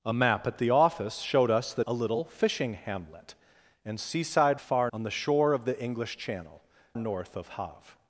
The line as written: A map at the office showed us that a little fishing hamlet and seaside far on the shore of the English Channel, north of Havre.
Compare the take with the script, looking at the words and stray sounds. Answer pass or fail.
pass